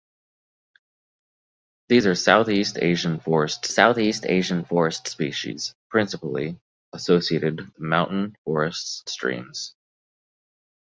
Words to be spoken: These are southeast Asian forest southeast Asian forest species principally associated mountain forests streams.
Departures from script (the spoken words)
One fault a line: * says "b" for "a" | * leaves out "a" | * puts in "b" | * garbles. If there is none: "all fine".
all fine